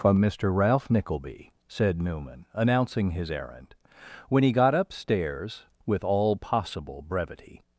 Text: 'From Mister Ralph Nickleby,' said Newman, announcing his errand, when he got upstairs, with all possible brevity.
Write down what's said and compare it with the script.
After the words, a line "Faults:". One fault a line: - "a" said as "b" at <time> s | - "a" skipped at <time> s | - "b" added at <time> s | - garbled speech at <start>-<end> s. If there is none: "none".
'From Mister Ralph Nickleby,' said Newman, announcing his errand, when he got upstairs, with all possible brevity.
Faults:
none